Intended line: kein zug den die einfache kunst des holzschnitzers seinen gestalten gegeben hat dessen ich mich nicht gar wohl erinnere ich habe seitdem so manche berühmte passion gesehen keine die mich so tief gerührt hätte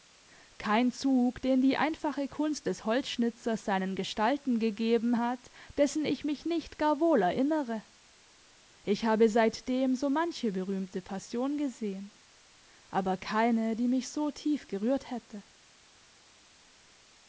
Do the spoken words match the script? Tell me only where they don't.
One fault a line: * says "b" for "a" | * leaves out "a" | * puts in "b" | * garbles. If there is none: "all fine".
* puts in "aber"